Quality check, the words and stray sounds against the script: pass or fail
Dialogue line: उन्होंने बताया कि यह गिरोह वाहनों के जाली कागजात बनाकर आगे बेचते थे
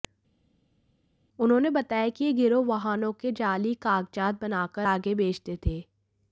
pass